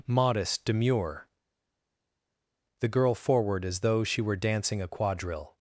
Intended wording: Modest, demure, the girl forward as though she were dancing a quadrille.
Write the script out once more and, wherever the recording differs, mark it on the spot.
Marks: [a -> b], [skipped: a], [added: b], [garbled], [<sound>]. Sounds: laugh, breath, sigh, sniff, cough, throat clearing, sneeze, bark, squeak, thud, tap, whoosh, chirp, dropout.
Modest, demure, the girl forward as though she were dancing a quadrille.